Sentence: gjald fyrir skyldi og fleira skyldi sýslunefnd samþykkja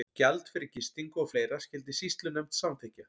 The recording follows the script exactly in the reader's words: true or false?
false